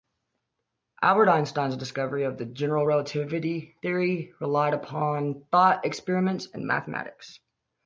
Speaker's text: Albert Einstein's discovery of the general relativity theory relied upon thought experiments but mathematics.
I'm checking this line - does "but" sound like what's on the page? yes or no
no